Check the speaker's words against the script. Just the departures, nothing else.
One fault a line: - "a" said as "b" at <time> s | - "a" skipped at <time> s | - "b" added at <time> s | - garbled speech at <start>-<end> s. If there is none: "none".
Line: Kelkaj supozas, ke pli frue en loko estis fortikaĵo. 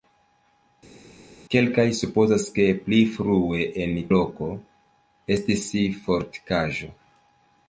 none